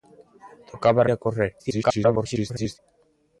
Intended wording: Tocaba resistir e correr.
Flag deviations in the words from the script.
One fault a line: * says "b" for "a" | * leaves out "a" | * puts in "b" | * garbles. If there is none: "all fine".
* leaves out "resistir"
* garbles